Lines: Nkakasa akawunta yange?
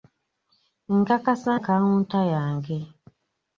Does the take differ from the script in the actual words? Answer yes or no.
no